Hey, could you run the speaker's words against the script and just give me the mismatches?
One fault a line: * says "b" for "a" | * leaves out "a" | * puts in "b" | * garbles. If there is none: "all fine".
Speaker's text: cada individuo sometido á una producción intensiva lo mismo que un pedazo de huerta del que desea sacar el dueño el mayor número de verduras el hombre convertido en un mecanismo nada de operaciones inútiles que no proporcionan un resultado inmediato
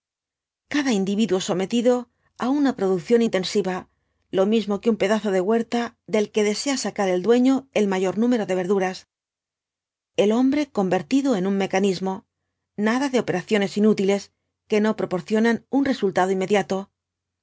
all fine